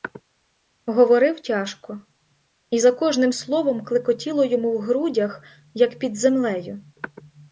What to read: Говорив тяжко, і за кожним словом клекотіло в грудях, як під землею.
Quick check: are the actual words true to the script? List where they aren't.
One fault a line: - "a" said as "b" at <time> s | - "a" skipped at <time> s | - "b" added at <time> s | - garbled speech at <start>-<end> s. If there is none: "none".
- "йому" added at 4.4 s